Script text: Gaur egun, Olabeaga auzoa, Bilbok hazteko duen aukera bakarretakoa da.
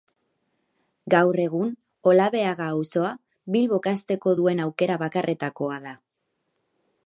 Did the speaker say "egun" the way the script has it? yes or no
yes